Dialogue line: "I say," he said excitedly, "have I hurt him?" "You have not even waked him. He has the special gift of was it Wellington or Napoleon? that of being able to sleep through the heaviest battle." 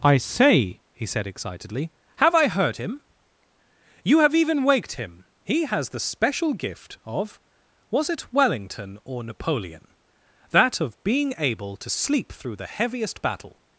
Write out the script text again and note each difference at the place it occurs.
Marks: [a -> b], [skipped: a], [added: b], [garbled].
"I say," he said excitedly, "have I [hurt -> heard] him?" "You have [skipped: not] even waked him. He has the special gift of was it Wellington or Napoleon? that of being able to sleep through the heaviest battle."